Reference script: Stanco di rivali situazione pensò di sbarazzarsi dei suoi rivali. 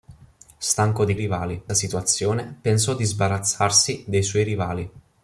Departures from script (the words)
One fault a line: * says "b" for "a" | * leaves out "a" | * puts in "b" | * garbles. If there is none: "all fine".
all fine